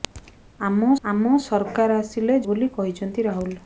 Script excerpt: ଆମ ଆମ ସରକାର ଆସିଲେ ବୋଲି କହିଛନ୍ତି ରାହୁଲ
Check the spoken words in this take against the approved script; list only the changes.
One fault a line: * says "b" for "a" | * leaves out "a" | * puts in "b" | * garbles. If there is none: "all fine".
all fine